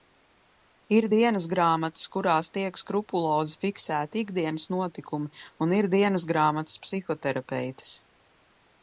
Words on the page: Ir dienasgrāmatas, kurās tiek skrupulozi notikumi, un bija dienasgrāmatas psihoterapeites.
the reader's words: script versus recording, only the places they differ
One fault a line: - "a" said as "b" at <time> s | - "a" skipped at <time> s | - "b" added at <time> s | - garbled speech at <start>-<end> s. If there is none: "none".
- "fiksēti ikdienas" added at 3.6 s
- "bija" said as "ir" at 5.8 s